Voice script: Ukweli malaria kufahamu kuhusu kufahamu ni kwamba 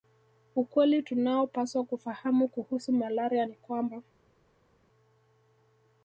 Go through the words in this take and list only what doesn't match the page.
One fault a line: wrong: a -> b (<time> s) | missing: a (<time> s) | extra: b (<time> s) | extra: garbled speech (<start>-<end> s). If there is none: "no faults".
wrong: malaria -> tunaopaswa (1.0 s)
wrong: kufahamu -> malaria (2.9 s)